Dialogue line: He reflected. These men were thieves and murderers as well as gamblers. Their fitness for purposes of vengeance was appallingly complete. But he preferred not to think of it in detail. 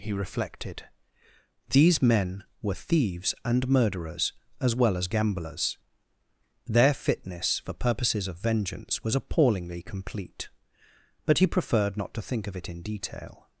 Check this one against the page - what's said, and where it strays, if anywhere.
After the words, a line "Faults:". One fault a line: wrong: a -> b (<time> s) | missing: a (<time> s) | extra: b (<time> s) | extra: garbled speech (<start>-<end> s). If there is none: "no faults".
He reflected. These men were thieves and murderers as well as gamblers. Their fitness for purposes of vengeance was appallingly complete. But he preferred not to think of it in detail.
Faults:
no faults